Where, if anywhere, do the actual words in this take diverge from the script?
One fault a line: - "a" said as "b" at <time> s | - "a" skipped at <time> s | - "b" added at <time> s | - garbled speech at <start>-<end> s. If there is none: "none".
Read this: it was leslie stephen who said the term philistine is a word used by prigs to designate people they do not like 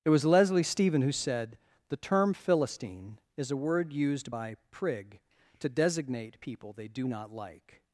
- "prigs" said as "prig" at 4.7 s